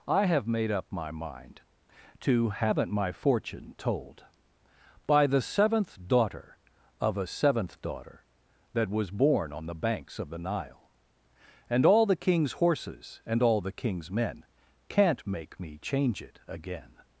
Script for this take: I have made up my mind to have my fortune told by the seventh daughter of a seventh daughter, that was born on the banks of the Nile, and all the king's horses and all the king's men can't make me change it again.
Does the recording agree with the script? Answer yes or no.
no